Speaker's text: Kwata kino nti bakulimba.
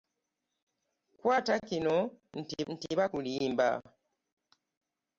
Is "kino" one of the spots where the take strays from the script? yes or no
no